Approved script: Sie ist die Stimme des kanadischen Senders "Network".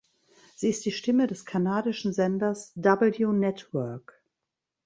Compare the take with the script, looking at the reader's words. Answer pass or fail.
fail